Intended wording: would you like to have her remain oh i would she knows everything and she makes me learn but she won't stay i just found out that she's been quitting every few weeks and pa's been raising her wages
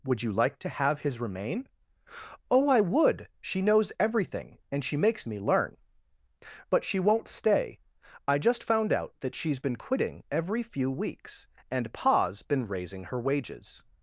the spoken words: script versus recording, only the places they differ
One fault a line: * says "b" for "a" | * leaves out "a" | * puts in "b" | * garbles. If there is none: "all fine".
* says "his" for "her"